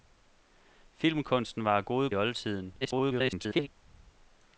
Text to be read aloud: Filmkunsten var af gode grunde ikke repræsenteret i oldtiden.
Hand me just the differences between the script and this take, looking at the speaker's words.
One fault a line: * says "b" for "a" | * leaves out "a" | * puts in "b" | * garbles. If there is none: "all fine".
* leaves out "grunde ikke repræsenteret"
* garbles